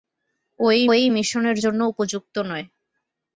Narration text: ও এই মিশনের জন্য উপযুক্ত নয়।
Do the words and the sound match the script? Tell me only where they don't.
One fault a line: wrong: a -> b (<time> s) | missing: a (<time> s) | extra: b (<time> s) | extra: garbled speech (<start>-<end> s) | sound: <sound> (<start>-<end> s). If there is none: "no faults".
extra: এই (0.9 s)